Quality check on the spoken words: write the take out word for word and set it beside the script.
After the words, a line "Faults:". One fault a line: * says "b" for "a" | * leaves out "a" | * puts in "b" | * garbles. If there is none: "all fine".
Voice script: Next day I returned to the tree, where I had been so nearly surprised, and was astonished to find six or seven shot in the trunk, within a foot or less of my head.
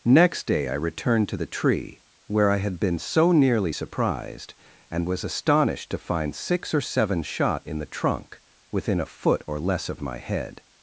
Next day I returned to the tree, where I had been so nearly surprised, and was astonished to find six or seven shot in the trunk, within a foot or less of my head.
Faults:
all fine